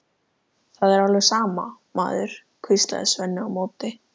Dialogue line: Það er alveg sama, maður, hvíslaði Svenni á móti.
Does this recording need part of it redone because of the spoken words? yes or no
no